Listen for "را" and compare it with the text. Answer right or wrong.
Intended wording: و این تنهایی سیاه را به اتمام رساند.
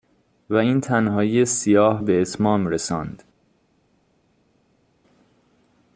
wrong